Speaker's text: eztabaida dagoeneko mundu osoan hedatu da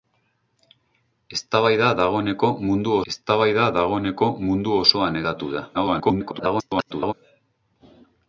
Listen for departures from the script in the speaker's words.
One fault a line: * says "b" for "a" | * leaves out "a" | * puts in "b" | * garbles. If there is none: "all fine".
* puts in "eztabaida dagoeneko mundu"
* garbles